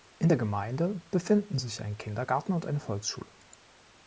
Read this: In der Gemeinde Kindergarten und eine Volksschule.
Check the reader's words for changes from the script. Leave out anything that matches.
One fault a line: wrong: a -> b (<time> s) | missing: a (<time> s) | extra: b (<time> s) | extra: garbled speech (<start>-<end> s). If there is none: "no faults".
extra: befinden sich ein (1.1 s)